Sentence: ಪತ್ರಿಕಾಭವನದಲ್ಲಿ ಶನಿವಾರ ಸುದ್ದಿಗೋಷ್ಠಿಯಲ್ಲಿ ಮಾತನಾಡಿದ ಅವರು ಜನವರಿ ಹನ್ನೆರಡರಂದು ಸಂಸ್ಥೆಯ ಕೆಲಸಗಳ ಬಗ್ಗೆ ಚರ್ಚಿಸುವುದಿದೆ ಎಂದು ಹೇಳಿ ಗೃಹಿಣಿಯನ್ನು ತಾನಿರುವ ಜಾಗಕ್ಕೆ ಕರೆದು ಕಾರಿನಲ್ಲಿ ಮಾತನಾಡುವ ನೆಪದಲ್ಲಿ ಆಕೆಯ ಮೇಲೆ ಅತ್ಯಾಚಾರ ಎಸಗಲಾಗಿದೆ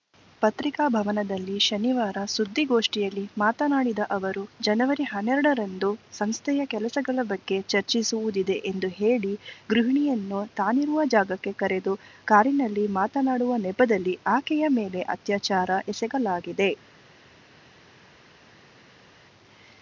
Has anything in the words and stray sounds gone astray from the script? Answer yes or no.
no